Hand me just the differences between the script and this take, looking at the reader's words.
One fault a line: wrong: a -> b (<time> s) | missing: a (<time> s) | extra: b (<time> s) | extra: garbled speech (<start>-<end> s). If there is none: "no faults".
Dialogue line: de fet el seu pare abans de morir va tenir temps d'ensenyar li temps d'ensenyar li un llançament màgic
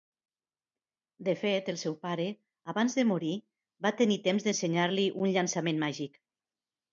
missing: temps d'ensenyar li (5.1 s)